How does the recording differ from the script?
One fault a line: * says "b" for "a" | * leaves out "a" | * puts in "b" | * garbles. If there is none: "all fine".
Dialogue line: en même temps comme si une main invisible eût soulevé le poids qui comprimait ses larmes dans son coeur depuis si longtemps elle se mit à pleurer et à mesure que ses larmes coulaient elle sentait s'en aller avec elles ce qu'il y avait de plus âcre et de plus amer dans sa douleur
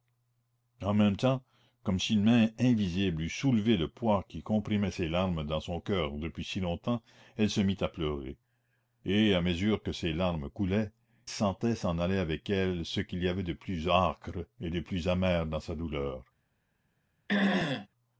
* leaves out "elle"